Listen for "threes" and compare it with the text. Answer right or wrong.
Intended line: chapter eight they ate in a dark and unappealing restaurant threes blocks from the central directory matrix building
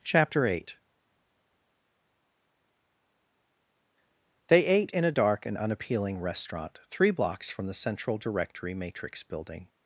wrong